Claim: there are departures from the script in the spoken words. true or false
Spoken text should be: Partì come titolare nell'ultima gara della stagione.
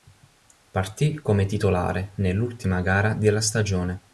false